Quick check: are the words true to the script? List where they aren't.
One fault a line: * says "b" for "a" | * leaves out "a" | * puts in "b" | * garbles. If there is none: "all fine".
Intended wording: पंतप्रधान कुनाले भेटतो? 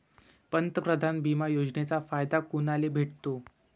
* puts in "बिमा योजनेचा फायदा"